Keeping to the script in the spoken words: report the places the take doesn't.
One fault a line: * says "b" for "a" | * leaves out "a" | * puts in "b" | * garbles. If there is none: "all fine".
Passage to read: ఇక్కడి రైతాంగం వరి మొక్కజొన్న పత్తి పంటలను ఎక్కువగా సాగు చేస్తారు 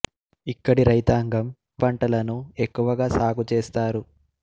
* leaves out "వరి మొక్కజొన్న పత్తి"